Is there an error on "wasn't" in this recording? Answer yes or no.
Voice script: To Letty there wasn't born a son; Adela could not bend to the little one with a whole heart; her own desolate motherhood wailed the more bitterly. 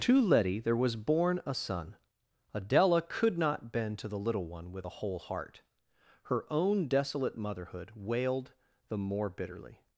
yes